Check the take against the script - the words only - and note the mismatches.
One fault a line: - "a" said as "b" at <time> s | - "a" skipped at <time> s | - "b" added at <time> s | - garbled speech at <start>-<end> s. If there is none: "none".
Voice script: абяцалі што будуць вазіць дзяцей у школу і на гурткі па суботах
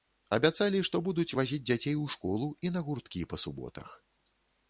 none